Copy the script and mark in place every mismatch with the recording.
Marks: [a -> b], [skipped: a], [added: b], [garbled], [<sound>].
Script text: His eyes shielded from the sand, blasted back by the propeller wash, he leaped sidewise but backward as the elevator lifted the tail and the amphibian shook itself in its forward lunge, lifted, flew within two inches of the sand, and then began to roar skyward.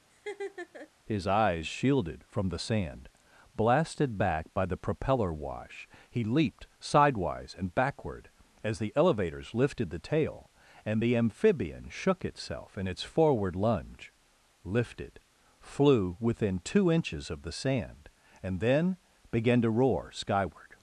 [laugh] His eyes shielded from the sand, blasted back by the propeller wash, he leaped sidewise [but -> and] backward as the [elevator -> elevators] lifted the tail and the amphibian shook itself in its forward lunge, lifted, flew within two inches of the sand, and then began to roar skyward.